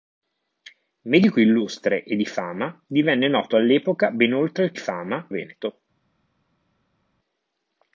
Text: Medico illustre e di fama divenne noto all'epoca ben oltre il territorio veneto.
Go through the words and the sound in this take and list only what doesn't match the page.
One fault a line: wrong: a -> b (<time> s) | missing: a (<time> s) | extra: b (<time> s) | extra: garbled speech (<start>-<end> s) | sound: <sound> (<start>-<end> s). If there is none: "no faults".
wrong: territorio -> fama (4.8 s)